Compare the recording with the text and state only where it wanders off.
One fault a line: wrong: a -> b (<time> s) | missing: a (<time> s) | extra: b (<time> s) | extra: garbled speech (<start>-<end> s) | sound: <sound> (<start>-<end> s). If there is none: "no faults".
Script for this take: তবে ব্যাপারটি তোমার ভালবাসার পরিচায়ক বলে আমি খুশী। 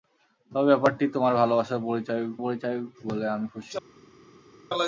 extra: পরিচায়ক (2.4 s)